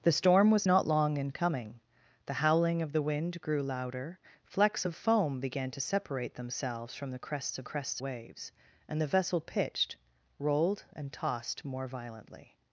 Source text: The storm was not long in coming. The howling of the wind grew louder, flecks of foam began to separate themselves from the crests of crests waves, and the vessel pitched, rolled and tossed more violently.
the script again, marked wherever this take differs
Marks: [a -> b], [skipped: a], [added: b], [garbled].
The storm was not long in coming. The howling of the wind grew louder, flecks of foam began to separate themselves from the crests of crests waves, and the vessel pitched, rolled and tossed more violently.